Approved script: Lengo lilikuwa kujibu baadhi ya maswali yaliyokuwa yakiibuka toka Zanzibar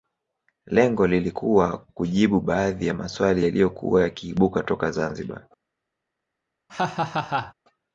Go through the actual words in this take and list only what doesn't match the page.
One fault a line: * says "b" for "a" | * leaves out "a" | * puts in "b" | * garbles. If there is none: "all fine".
all fine